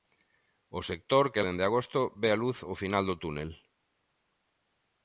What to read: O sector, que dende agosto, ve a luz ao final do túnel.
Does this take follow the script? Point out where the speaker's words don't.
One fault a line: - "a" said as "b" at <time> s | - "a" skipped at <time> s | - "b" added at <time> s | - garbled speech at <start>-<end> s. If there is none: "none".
none